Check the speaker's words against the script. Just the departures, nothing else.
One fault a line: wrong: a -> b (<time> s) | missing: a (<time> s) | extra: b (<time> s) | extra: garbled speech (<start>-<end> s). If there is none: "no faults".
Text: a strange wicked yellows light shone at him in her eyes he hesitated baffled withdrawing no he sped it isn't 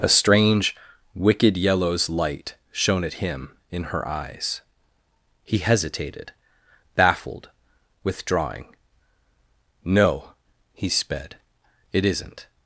no faults